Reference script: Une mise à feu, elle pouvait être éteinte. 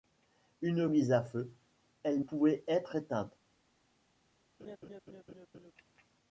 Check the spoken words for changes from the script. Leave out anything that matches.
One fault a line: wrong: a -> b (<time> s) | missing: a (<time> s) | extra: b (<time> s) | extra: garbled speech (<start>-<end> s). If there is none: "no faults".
no faults